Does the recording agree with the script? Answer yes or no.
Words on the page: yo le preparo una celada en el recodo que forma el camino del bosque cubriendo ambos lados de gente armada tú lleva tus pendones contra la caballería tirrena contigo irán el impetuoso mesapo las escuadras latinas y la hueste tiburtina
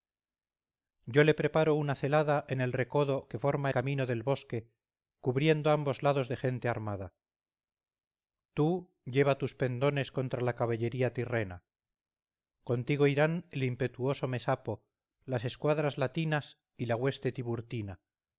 no